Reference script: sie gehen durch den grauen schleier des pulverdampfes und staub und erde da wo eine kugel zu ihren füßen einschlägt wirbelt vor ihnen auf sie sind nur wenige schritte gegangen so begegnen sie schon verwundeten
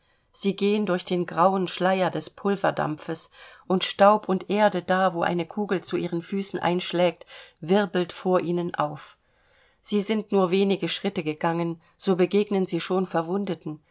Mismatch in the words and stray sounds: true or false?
false